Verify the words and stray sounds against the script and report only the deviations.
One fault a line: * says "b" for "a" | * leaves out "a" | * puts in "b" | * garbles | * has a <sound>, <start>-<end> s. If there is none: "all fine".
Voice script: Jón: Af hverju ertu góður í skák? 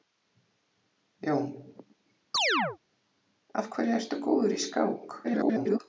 * has a chirp, 2.3-2.8 s
* garbles